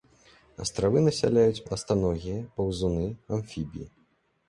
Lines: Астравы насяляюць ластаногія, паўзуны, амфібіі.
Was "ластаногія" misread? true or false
false